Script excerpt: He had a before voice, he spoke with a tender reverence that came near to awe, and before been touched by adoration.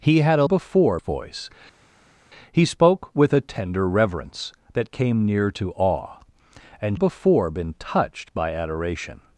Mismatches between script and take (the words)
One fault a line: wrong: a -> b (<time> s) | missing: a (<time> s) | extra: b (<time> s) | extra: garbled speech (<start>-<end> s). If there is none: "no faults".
no faults